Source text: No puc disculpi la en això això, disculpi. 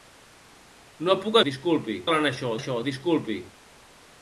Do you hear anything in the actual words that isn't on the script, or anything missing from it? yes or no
no